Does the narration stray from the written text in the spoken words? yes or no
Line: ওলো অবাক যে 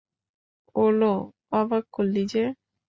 yes